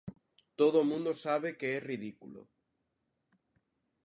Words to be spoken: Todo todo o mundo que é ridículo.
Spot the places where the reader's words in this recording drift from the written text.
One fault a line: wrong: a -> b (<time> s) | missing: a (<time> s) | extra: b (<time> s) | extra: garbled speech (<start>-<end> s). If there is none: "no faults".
missing: todo (0.8 s)
extra: sabe (1.1 s)